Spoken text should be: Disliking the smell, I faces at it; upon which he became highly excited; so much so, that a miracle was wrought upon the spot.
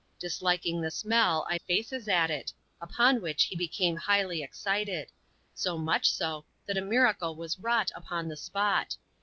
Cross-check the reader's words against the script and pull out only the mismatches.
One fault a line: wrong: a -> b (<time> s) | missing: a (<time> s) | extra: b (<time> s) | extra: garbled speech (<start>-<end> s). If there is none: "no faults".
no faults